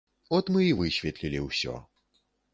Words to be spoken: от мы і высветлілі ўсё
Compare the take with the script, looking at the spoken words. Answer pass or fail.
pass